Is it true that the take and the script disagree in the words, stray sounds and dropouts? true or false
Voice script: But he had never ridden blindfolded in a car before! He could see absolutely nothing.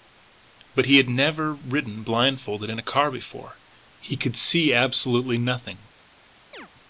true